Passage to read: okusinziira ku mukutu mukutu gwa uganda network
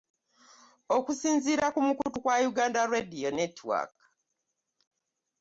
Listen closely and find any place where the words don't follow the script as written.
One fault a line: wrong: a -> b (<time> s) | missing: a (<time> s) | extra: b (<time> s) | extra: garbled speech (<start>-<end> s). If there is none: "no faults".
missing: mukutu (2.2 s)
extra: radio (2.9 s)